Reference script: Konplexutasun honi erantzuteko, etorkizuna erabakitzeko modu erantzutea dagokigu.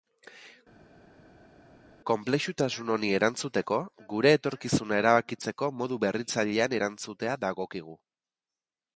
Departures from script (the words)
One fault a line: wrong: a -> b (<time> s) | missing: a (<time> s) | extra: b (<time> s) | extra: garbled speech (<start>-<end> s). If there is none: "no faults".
extra: gure (4.1 s)
extra: berritzailean (6.1 s)